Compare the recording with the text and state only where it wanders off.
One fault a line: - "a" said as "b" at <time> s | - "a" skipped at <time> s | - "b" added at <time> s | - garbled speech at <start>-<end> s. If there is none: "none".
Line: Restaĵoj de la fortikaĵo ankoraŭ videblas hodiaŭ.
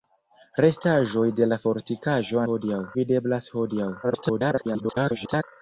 - "ankoraŭ" said as "hodiaŭ" at 2.5 s
- garbled speech at 4.0-5.4 s